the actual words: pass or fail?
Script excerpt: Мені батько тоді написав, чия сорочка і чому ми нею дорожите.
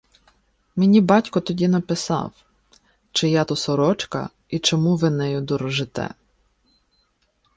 fail